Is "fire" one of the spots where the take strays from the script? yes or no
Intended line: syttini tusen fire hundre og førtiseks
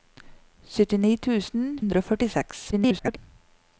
yes